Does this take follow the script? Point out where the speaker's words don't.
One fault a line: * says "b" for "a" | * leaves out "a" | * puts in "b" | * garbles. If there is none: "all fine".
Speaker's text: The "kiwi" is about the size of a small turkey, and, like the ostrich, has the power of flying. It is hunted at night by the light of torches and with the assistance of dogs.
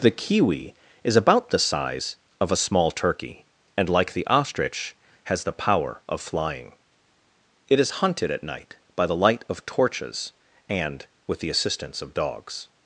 all fine